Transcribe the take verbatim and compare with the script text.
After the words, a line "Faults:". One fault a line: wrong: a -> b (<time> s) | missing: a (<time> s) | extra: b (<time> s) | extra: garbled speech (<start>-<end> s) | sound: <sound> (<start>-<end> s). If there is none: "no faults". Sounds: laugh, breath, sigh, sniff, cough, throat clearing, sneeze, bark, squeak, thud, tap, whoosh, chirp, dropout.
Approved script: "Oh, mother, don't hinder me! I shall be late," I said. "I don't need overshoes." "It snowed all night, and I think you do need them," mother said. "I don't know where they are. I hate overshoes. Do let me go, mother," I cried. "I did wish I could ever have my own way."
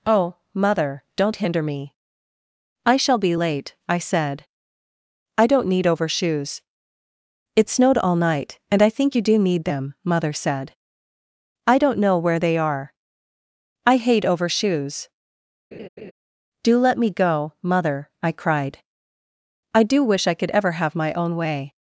"Oh, mother, don't hinder me! I shall be late," I said. "I don't need overshoes." "It snowed all night, and I think you do need them," mother said. "I don't know where they are. I hate overshoes. Do let me go, mother," I cried. "I do wish I could ever have my own way."
Faults:
sound: laugh (15.7-16.1 s)
wrong: did -> do (19.8 s)